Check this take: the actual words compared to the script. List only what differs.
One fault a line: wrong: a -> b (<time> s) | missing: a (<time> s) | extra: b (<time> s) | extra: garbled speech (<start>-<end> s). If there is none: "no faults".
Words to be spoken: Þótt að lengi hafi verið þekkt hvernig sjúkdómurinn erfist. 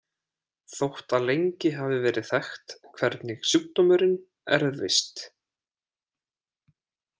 no faults